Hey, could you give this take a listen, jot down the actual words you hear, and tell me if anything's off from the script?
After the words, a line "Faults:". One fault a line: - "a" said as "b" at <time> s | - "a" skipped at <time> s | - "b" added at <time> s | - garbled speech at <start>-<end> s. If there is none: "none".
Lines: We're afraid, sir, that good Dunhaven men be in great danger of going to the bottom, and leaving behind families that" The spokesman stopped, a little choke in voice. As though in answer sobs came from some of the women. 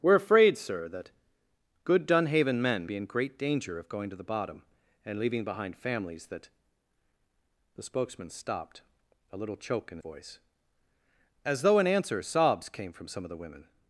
We're afraid, sir, that good Dunhaven men be in great danger of going to the bottom, and leaving behind families that" The spokesman stopped, a little choke in voice. As though in answer sobs came from some of the women.
Faults:
none